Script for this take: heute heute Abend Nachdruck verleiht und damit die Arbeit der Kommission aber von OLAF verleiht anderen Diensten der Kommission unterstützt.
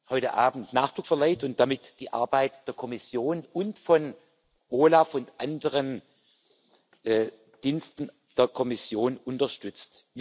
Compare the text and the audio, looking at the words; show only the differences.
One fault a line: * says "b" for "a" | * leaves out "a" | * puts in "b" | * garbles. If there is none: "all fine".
* leaves out "heute"
* says "und" for "aber"
* says "und" for "verleiht"